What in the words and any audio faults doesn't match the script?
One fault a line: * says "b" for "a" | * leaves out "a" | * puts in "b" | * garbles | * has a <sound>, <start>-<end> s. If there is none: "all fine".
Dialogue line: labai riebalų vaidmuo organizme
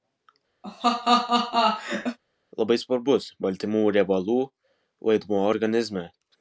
* has a laugh, 0.6-2.2 s
* puts in "svarbus baltymų"